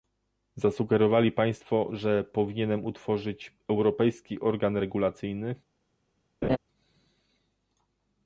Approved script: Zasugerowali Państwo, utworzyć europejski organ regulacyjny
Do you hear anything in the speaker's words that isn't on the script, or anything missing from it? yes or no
yes